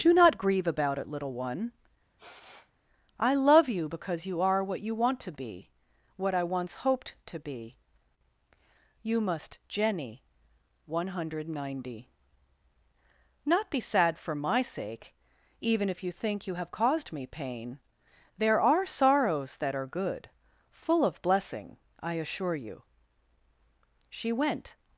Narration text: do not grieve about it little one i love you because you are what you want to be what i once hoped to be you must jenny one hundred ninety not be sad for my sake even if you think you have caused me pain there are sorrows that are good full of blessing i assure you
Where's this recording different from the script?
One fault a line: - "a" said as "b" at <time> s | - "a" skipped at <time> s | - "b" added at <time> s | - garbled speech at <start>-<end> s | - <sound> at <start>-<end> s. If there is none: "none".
- sneeze at 2.2-2.8 s
- "she went" added at 24.1 s